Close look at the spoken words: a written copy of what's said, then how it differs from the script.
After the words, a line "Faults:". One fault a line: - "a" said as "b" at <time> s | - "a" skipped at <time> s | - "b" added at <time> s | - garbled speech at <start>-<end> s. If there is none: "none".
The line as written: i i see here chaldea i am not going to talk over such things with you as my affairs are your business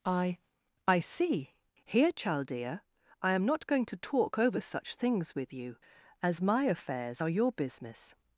i i see here chaldea i am not going to talk over such things with you as my affairs are your business
Faults:
none